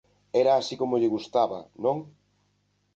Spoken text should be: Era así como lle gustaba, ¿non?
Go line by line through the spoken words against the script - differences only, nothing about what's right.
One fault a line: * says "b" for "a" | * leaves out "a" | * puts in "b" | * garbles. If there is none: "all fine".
all fine